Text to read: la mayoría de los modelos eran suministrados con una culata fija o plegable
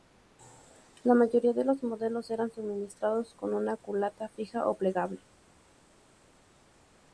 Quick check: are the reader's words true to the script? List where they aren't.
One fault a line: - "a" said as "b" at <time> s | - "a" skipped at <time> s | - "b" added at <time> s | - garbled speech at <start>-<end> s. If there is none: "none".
none